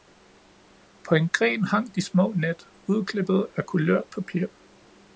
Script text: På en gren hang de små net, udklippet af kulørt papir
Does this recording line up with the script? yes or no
yes